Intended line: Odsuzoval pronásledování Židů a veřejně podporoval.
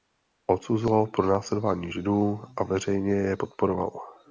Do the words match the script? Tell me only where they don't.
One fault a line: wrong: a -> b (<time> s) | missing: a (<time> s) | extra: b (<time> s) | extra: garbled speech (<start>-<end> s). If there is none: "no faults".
extra: je (3.1 s)